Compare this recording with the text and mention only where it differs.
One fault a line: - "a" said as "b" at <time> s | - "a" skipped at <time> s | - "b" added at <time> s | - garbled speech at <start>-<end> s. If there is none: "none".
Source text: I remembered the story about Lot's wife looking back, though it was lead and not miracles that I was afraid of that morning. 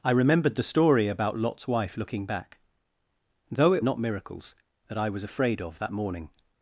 - "was lead and" skipped at 3.9 s